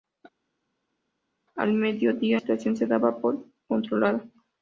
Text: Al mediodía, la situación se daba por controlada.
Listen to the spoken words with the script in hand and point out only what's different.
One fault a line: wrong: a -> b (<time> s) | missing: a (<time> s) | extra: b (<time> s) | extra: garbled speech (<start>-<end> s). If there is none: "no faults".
missing: la (2.4 s)